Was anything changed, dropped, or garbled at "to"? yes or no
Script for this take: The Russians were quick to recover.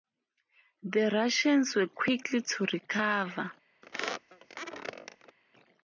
no